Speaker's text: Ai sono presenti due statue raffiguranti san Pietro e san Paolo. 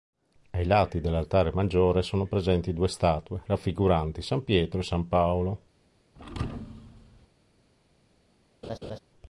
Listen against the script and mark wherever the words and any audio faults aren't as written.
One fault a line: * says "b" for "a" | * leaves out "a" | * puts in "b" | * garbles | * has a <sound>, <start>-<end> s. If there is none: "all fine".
* puts in "lati dell'altare maggiore"
* has a thud, 6.2-7.3 s
* has a laugh, 8.6-9.0 s